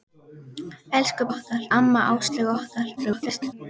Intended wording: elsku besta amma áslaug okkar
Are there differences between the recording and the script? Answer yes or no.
yes